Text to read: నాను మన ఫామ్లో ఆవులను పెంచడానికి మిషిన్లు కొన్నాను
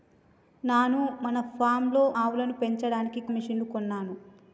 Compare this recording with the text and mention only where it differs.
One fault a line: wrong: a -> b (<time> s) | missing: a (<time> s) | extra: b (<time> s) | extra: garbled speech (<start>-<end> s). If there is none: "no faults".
no faults